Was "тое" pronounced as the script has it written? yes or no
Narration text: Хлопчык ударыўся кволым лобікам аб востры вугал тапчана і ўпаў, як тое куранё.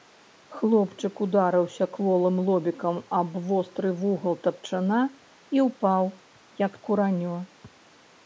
no